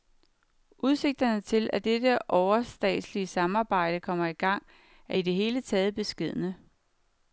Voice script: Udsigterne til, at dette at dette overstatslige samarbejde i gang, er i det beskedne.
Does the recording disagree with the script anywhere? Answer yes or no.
yes